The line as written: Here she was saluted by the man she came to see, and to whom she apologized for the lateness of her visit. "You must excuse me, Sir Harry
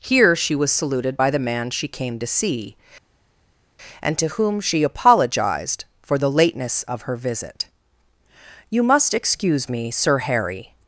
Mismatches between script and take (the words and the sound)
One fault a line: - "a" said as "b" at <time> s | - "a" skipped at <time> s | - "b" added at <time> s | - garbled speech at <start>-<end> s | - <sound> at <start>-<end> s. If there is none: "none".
none